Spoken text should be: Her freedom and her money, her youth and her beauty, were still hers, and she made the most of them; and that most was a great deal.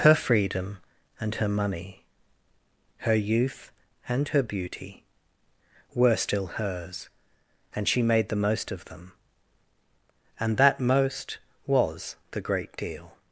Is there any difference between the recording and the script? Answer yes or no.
yes